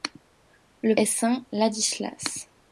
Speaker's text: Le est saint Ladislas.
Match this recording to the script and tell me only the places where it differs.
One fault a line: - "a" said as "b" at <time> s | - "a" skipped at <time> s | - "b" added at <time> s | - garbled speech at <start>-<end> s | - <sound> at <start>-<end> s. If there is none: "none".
none